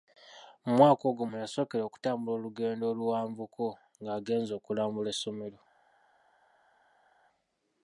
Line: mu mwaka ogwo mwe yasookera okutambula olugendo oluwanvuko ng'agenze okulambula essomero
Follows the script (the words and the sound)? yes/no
yes